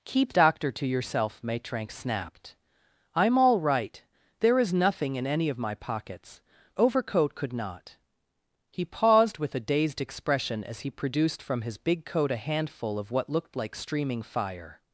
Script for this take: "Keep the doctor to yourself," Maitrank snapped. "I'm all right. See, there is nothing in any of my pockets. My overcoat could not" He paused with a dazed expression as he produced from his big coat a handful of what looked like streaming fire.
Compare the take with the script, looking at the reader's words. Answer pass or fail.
fail